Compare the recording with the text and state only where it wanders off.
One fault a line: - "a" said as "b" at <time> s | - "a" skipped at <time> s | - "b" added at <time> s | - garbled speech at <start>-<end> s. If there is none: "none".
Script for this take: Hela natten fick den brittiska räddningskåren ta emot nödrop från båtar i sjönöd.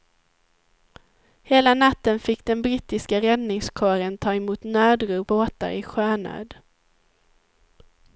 - "från" skipped at 5.3 s